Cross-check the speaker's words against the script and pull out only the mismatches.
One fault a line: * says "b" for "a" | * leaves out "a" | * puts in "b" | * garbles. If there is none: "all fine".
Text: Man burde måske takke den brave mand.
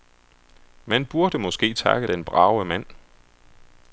all fine